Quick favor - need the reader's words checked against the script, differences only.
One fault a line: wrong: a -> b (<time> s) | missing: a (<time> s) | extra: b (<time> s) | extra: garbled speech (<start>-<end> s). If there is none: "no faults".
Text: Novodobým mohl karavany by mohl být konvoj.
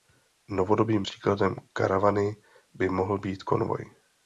wrong: mohl -> příkladem (1.0 s)